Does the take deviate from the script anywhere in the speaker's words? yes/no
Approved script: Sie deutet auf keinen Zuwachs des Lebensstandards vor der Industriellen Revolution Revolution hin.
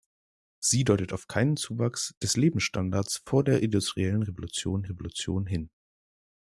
no